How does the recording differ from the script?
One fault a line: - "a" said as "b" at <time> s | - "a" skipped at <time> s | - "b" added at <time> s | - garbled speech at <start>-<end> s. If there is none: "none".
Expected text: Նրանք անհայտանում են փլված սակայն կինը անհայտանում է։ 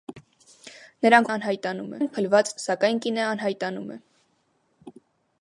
none